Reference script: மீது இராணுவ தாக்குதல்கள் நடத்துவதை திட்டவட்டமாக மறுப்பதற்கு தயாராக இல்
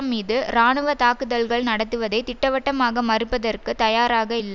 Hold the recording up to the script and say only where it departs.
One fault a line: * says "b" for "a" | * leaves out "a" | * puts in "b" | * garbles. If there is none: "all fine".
all fine